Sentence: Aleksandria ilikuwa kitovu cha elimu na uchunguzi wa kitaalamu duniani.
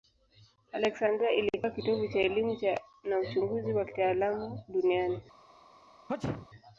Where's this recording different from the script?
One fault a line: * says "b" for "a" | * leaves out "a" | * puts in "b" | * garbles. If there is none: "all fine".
all fine